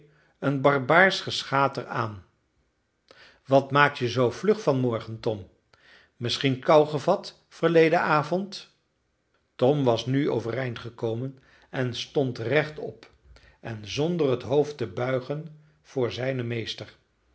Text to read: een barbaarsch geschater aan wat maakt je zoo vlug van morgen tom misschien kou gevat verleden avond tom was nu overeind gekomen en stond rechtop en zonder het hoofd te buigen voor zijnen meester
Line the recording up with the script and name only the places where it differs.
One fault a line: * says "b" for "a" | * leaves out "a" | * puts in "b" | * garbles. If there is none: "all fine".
all fine